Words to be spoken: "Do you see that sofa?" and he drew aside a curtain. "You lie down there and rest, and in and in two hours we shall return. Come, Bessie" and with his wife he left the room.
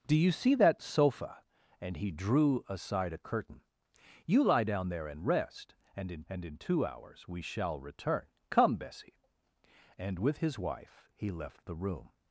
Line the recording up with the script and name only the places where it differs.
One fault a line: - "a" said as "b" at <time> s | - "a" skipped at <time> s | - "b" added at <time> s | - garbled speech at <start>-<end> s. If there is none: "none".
none